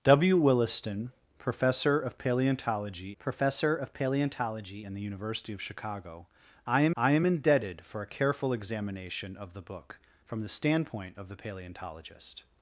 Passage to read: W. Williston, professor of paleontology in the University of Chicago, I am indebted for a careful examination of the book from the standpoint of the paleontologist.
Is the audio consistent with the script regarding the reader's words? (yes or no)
no